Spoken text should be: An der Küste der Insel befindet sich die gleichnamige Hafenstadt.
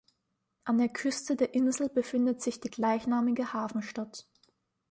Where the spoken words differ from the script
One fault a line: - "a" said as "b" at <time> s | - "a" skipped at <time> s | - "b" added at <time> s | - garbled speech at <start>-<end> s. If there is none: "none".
none